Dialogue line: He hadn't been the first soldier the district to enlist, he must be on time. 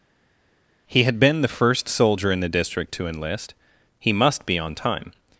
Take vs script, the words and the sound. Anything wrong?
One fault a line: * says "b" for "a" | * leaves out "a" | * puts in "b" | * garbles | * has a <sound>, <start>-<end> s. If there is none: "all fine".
* says "had" for "hadn't"
* puts in "in"